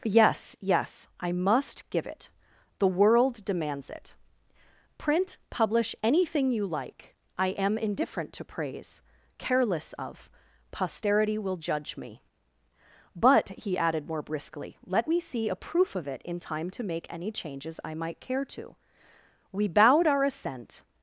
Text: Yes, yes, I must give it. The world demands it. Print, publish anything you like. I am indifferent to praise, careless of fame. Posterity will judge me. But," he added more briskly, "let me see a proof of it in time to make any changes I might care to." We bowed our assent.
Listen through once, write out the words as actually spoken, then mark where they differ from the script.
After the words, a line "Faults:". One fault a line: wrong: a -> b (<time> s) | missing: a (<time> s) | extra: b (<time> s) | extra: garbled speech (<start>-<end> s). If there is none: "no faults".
Yes, yes, I must give it. The world demands it. Print, publish anything you like. I am indifferent to praise, careless of. Posterity will judge me. But," he added more briskly, "let me see a proof of it in time to make any changes I might care to." We bowed our assent.
Faults:
missing: fame (10.3 s)